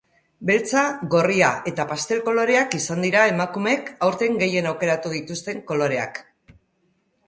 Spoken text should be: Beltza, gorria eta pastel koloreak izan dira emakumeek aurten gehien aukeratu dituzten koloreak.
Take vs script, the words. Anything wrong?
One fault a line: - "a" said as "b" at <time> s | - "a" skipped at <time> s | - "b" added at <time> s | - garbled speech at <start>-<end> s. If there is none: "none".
none